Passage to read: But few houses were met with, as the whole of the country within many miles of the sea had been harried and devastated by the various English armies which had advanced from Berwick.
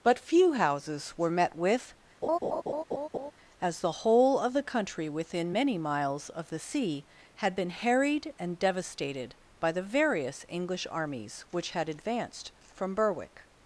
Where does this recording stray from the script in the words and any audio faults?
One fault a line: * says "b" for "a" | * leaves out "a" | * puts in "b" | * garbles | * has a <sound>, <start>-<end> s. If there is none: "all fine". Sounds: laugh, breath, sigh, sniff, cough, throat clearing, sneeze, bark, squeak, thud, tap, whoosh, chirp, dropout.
* has a laugh, 2.2-3.3 s